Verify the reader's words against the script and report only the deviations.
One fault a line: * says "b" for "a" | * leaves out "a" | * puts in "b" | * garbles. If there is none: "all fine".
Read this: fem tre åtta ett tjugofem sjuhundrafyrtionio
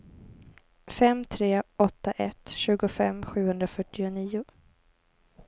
all fine